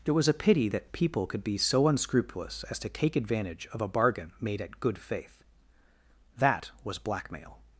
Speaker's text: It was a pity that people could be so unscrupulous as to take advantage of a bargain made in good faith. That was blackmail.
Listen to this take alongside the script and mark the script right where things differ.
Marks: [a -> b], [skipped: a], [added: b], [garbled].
It was a pity that people could be so unscrupulous as to take advantage of a bargain made [in -> at] good faith. That was blackmail.